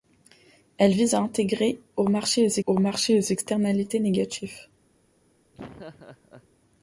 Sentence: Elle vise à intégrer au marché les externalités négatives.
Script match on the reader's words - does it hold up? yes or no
no